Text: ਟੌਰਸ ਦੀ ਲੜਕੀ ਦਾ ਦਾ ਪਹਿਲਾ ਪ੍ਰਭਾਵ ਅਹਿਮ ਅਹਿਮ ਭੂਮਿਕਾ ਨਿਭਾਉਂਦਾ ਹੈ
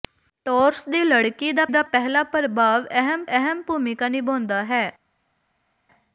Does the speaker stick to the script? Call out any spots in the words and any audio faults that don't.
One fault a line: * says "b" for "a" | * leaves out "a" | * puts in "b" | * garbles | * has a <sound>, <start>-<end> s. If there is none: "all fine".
all fine